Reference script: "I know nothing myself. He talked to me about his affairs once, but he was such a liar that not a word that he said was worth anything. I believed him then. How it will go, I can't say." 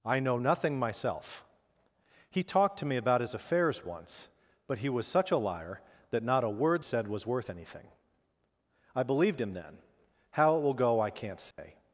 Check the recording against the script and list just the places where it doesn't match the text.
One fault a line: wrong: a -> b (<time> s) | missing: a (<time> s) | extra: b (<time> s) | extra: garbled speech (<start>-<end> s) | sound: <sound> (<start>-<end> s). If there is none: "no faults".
missing: that he (6.8 s)
sound: dropout (11.5-11.6 s)